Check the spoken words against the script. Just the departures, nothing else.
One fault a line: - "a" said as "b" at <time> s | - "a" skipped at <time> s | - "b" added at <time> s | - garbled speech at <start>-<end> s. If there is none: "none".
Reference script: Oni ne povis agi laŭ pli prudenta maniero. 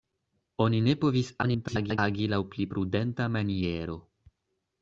- garbled speech at 1.4-2.0 s